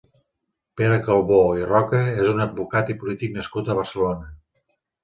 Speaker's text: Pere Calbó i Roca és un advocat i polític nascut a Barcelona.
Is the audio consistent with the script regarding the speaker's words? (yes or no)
yes